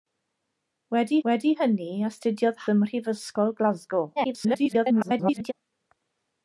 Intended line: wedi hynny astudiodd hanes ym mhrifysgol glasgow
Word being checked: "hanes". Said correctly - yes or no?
no